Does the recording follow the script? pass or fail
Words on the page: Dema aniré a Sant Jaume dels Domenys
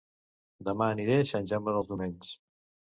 pass